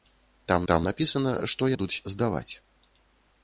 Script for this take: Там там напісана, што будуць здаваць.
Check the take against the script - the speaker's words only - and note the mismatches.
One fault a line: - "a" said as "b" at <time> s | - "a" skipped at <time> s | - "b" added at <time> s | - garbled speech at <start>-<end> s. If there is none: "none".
none